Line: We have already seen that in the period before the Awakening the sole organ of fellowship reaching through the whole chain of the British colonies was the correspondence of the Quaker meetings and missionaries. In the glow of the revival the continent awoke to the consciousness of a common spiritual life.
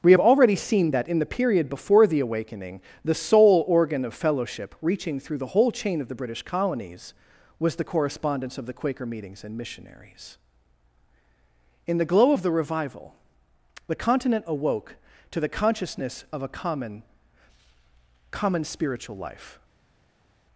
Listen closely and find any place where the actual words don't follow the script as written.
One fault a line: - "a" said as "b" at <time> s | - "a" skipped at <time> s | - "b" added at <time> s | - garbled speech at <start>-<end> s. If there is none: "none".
- "common" added at 18.3 s